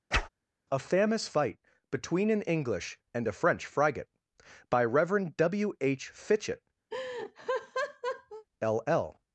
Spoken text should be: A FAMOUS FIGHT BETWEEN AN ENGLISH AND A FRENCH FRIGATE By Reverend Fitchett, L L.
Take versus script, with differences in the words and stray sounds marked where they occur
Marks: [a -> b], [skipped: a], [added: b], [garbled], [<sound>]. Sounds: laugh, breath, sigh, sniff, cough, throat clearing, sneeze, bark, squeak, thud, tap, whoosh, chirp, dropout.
[whoosh] A FAMOUS FIGHT BETWEEN AN ENGLISH AND A FRENCH FRIGATE By Reverend [added: W H] Fitchett, [laugh] L L.